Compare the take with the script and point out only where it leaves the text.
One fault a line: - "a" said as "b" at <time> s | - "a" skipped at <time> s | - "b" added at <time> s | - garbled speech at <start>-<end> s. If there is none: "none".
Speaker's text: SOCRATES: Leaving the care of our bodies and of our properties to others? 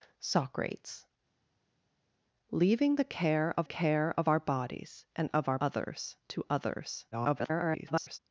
- "care of" added at 3.6 s
- "properties" said as "others" at 5.6 s
- garbled speech at 7.1-8.2 s